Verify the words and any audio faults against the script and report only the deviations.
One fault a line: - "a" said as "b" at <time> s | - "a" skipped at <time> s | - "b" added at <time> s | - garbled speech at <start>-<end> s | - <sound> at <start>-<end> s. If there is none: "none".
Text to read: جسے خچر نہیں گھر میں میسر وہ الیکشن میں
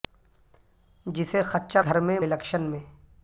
- "نہیں" skipped at 1.8 s
- "میسر وہ" skipped at 2.2 s